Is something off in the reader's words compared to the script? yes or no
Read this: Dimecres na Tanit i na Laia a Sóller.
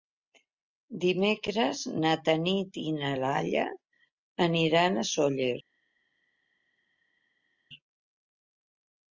yes